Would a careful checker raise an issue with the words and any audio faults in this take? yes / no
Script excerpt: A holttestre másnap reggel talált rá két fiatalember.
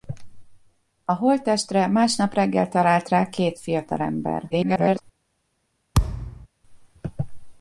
yes